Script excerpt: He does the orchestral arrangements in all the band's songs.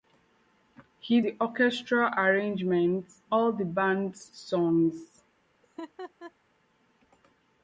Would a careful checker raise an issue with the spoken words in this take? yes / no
yes